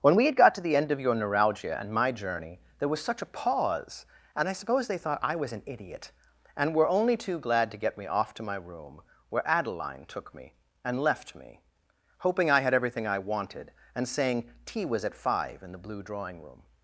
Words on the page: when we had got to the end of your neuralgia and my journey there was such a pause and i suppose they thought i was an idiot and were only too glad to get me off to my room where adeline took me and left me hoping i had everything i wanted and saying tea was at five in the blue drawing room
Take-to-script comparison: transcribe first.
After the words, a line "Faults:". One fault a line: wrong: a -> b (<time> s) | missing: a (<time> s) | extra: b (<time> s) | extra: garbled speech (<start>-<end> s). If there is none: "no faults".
when we had got to the end of your neuralgia and my journey there was such a pause and i suppose they thought i was an idiot and were only too glad to get me off to my room where adeline took me and left me hoping i had everything i wanted and saying tea was at five in the blue drawing room
Faults:
no faults